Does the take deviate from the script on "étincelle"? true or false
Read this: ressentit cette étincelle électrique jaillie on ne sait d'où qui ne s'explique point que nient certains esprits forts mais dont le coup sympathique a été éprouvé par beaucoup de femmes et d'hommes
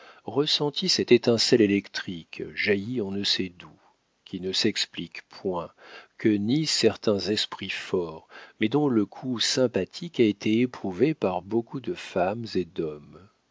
false